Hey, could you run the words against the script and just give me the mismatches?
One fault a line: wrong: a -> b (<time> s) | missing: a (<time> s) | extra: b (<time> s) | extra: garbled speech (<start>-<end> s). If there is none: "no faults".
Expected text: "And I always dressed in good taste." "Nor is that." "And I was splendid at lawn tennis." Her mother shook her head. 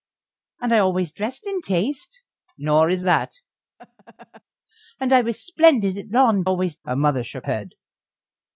missing: good (1.6 s)
wrong: tennis -> always (6.4 s)
missing: her (7.5 s)